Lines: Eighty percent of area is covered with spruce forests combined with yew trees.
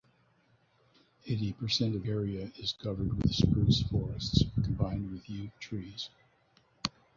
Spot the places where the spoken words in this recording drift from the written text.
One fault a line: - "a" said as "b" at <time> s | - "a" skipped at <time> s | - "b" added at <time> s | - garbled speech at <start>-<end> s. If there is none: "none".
none